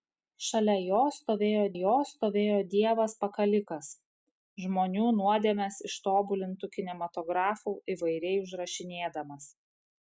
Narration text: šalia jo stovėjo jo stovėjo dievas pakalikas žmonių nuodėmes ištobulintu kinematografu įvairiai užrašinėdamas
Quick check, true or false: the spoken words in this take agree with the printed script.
true